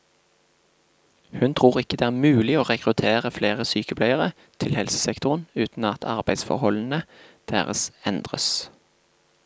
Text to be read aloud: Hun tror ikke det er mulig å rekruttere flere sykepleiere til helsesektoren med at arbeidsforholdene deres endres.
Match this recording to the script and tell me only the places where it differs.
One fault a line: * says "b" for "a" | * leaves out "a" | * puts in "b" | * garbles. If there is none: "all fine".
* says "uten" for "med"